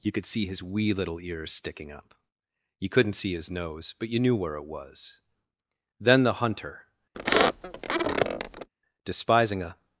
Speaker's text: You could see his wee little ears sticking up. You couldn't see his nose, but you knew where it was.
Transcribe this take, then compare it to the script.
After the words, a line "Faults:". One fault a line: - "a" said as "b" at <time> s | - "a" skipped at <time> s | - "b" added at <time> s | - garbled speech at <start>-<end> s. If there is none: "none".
You could see his wee little ears sticking up. You couldn't see his nose, but you knew where it was. Then the hunter, despising a
Faults:
- "Then the hunter despising a" added at 6.0 s